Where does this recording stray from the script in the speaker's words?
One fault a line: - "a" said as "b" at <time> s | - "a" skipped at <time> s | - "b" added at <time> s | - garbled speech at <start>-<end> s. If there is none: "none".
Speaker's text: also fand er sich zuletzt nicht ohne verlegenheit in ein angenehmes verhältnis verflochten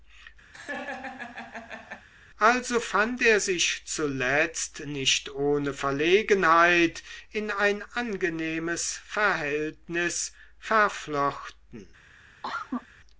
none